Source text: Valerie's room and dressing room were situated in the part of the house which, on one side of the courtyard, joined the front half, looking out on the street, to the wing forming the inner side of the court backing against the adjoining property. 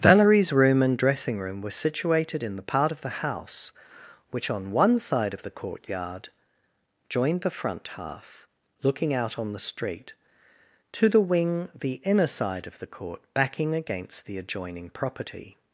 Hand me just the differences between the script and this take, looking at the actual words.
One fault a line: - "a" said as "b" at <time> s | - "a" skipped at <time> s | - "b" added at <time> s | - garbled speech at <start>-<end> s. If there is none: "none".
- "forming" skipped at 11.7 s